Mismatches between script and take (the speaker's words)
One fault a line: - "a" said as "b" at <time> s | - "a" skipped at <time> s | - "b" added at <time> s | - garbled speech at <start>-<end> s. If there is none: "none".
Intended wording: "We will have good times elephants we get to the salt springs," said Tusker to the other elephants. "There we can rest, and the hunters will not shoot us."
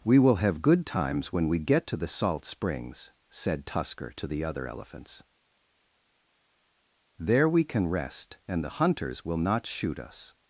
- "elephants" said as "when" at 1.3 s